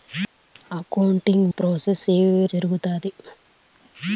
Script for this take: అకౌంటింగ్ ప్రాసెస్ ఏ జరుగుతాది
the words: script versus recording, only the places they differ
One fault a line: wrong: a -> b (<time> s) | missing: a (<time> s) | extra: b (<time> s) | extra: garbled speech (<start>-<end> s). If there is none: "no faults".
no faults